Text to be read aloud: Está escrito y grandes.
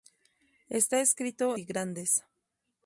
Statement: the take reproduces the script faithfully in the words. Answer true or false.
true